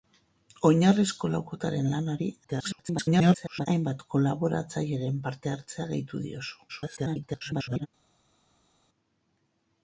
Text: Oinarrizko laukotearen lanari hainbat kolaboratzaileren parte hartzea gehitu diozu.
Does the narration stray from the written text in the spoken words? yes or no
yes